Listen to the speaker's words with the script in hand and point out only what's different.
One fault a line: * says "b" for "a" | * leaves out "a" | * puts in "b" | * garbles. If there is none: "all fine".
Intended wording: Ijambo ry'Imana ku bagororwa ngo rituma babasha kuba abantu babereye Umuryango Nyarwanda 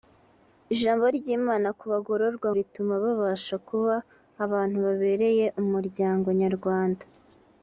* leaves out "ngo"